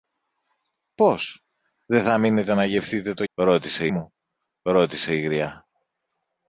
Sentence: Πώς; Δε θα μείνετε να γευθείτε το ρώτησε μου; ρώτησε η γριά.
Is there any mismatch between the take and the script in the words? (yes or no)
no